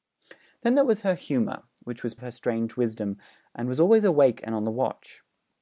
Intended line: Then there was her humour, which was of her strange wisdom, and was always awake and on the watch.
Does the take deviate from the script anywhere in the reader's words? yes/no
no